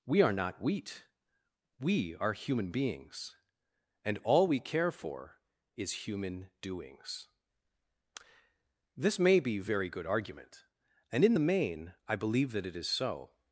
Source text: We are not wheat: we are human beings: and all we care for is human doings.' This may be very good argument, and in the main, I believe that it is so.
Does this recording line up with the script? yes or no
yes